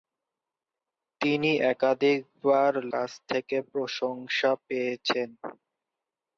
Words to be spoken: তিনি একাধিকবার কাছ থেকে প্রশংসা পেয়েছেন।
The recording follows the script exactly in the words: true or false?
true